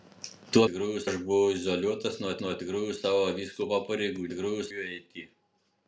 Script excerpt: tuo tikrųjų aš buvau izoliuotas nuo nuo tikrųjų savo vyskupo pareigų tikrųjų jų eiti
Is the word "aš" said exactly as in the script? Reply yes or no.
yes